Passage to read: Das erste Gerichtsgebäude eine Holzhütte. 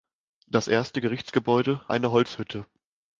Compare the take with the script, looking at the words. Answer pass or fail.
pass